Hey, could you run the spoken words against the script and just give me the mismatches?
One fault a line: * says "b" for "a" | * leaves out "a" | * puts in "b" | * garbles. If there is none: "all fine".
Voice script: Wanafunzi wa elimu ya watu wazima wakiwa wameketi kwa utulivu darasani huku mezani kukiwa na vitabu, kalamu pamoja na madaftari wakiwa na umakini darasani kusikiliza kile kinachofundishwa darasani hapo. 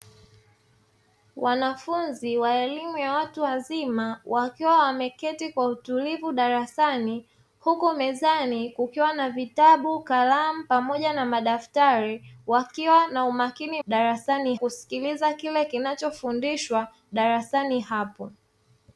all fine